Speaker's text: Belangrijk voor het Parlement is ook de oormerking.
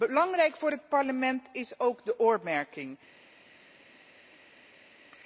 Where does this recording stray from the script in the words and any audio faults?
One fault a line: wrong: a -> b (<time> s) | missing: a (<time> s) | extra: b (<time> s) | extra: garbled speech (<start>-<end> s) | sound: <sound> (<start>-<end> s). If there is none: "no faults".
no faults